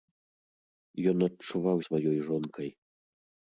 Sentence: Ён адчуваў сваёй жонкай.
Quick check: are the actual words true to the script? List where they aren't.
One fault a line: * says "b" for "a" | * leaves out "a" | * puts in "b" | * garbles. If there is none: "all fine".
all fine